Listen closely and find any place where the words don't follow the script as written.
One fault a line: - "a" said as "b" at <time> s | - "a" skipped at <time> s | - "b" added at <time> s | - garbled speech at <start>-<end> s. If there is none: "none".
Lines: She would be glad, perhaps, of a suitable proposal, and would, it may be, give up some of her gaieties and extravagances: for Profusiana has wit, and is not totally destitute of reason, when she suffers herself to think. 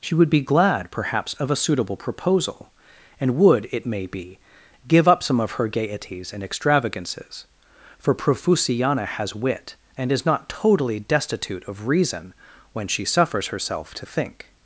none